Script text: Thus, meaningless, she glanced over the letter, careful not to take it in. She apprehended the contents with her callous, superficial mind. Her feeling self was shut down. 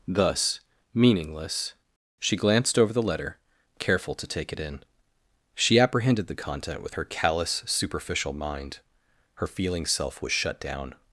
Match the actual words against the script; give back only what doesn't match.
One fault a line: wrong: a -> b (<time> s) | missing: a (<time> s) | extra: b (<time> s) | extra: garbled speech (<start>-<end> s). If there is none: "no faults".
missing: not (4.2 s)
wrong: contents -> content (6.3 s)